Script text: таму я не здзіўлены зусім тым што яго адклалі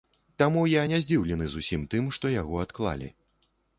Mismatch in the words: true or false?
false